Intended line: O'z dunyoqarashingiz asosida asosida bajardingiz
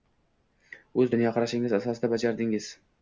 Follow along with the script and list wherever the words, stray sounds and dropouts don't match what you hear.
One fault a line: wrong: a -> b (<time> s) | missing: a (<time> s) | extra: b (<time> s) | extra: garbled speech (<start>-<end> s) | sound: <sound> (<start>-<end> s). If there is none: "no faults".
missing: asosida (2.1 s)